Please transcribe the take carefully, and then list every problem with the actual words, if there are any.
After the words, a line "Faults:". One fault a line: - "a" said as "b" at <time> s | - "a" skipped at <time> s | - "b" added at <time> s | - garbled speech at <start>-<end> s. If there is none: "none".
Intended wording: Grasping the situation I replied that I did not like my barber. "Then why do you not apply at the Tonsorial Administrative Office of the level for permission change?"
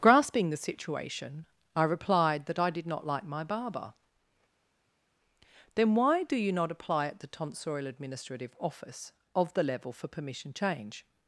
Grasping the situation I replied that I did not like my barber. "Then why do you not apply at the Tonsorial Administrative Office of the level for permission change?"
Faults:
none